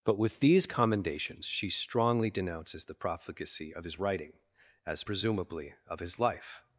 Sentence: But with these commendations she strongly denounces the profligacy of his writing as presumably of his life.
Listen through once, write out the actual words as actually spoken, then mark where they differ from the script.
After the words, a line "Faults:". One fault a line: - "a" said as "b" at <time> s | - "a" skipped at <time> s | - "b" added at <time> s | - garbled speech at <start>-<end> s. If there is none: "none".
But with these commendations she strongly denounces the profligacy of his writing as presumably of his life.
Faults:
none